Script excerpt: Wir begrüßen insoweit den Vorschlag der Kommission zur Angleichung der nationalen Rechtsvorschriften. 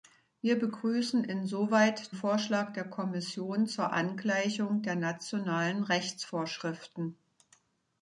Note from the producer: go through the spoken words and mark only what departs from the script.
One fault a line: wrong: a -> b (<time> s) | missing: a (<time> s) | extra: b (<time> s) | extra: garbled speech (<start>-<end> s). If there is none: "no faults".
missing: den (2.1 s)